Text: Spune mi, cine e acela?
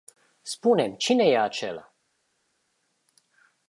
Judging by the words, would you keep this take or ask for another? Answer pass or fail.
pass